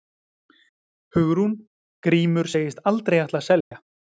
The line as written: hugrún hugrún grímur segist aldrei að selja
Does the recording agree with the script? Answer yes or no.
no